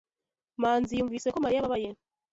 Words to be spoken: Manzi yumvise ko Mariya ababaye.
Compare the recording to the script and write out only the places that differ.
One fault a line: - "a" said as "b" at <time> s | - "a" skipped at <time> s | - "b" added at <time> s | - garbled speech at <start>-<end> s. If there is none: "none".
none